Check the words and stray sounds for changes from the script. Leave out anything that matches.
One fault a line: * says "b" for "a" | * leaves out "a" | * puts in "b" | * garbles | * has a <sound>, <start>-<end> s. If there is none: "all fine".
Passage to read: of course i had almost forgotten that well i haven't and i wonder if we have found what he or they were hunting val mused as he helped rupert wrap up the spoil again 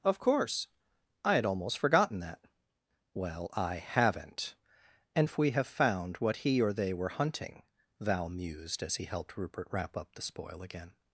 * leaves out "i wonder"